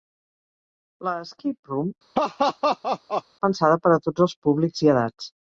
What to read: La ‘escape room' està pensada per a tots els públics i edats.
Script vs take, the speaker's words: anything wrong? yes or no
yes